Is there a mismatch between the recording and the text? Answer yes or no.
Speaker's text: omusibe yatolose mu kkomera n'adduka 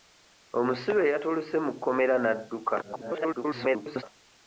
yes